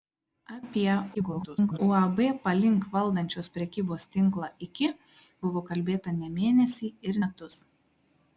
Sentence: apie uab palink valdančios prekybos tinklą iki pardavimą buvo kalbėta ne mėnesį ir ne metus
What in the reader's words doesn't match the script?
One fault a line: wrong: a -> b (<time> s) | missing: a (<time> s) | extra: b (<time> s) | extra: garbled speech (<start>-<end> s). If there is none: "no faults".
extra: garbled speech (1.1-1.8 s)
missing: pardavimą (4.9 s)
missing: ne (7.2 s)